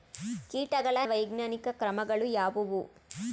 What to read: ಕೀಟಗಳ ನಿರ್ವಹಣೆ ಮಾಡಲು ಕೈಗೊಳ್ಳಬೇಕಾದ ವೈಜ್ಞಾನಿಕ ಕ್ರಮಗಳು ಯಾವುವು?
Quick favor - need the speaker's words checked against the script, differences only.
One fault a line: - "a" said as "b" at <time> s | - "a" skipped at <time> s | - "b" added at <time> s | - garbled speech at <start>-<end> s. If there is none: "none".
- "ನಿರ್ವಹಣೆ ಮಾಡಲು ಕೈಗೊಳ್ಳಬೇಕಾದ" skipped at 1.0 s